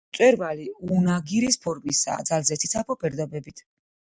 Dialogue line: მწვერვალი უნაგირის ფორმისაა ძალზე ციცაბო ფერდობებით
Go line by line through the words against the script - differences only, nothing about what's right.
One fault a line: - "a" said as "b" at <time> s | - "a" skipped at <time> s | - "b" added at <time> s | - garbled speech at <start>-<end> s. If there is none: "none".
none